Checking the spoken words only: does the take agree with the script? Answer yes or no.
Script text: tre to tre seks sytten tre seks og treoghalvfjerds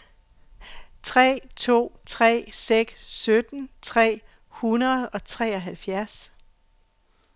no